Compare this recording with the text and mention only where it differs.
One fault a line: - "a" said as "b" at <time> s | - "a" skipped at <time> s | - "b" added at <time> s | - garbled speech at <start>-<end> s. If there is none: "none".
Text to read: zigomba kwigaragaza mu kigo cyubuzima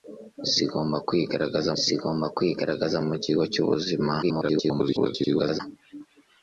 - "zigomba kwigaragaza" added at 1.8 s
- garbled speech at 4.2-5.6 s